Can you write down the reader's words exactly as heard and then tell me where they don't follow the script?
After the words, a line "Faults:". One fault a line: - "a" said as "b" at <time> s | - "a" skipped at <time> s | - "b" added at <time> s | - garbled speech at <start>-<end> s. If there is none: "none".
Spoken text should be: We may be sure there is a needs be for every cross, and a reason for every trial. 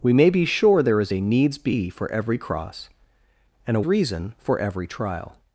We may be sure there is a needs be for every cross, and a reason for every trial.
Faults:
none